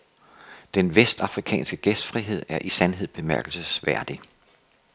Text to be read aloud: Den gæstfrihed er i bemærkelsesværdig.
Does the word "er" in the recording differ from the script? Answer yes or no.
no